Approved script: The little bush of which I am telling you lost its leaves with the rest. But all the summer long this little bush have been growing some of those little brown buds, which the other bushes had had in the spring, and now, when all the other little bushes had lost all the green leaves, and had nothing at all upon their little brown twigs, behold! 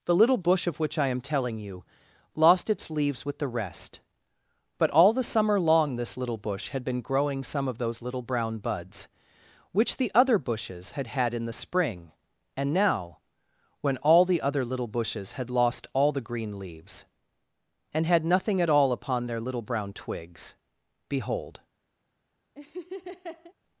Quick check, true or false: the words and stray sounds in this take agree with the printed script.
false